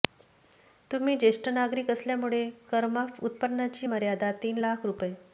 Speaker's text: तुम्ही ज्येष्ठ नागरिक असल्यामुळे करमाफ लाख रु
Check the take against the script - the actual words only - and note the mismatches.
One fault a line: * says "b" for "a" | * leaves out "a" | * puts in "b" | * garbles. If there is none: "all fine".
* puts in "उत्पन्नाची मर्यादा तीन"